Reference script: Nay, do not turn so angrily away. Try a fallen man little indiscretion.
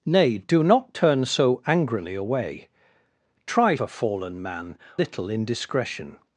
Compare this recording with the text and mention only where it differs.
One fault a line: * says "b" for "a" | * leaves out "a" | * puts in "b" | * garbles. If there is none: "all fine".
all fine